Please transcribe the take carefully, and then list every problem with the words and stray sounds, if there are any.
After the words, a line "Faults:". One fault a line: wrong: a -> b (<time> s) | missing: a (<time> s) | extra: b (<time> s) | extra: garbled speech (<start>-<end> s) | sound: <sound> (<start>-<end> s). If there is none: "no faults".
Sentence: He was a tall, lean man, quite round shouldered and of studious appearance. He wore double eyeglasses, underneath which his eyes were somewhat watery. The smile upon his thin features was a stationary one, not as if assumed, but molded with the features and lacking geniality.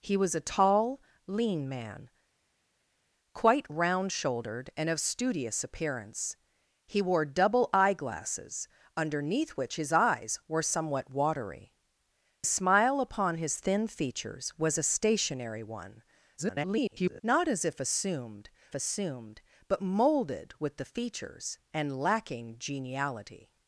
He was a tall, lean man, quite round shouldered and of studious appearance. He wore double eyeglasses, underneath which his eyes were somewhat watery. Smile upon his thin features was a stationary one, [garbled] not as if assumed assumed, but molded with the features and lacking geniality.
Faults:
missing: The (11.7 s)
extra: garbled speech (16.4-17.2 s)
extra: assumed (18.7 s)